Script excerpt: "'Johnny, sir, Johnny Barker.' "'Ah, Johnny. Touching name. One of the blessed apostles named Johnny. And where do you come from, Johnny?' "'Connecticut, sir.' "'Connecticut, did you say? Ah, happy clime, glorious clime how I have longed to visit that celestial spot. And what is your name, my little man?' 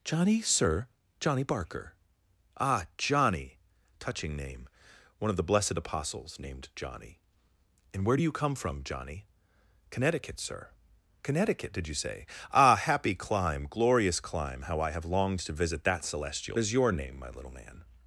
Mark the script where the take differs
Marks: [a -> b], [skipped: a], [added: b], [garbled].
"'Johnny, sir, Johnny Barker.' "'Ah, Johnny. Touching name. One of the blessed apostles named Johnny. And where do you come from, Johnny?' "'Connecticut, sir.' "'Connecticut, did you say? Ah, happy clime, glorious clime how I have longed to visit that celestial [skipped: spot. And what] is your name, my little man?'